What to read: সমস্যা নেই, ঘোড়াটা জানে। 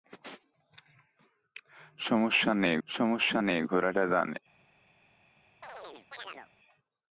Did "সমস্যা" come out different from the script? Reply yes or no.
no